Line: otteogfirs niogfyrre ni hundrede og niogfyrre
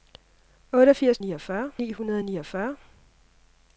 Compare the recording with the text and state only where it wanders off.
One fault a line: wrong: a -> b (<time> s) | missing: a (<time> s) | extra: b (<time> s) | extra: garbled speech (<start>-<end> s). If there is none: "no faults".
no faults